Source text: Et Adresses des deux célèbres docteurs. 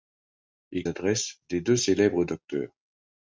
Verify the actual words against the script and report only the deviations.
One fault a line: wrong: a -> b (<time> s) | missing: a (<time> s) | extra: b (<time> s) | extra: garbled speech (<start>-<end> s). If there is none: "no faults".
no faults